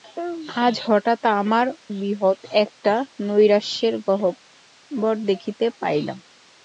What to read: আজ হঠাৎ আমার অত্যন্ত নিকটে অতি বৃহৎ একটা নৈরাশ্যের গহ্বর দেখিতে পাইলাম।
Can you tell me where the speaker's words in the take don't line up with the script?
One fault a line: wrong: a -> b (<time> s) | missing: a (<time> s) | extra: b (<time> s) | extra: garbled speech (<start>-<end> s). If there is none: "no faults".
missing: অত্যন্ত নিকটে অতি (1.6 s)